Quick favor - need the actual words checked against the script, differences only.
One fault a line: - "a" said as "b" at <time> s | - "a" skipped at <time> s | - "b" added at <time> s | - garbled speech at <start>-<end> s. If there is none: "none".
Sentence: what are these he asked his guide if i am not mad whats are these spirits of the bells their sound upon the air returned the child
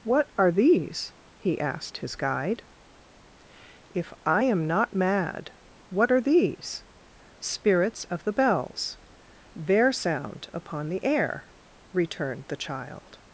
- "whats" said as "what" at 5.9 s